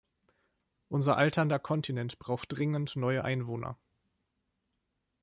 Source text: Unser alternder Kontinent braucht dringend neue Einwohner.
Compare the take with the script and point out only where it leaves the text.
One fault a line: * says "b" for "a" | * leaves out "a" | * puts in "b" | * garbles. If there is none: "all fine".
all fine